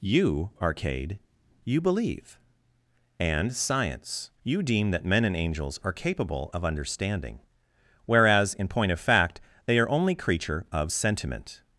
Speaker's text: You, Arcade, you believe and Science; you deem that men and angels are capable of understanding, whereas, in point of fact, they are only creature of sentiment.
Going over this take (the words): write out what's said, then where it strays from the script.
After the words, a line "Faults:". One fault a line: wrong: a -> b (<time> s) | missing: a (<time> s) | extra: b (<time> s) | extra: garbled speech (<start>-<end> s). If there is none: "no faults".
You, Arcade, you believe and Science; you deem that men and angels are capable of understanding, whereas, in point of fact, they are only creature of sentiment.
Faults:
no faults